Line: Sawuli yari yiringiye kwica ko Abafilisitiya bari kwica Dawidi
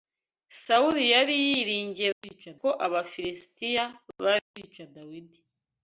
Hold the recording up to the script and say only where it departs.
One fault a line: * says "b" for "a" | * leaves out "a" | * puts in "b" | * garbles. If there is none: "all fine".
all fine